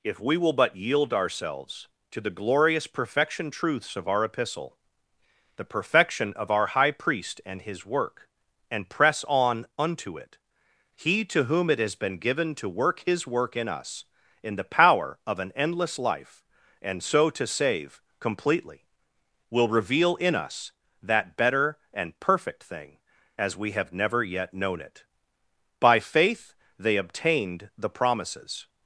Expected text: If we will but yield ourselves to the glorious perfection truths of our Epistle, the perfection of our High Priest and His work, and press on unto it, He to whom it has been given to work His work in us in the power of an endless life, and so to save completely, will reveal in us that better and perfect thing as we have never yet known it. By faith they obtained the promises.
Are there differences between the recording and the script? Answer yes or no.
no